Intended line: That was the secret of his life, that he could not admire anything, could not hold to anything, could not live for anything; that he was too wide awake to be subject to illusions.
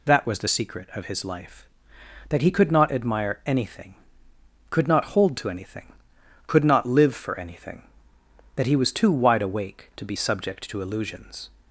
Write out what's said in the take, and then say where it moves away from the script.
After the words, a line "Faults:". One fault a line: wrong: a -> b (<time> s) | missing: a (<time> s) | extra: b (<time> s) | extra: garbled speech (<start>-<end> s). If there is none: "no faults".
That was the secret of his life, that he could not admire anything, could not hold to anything, could not live for anything; that he was too wide awake to be subject to illusions.
Faults:
no faults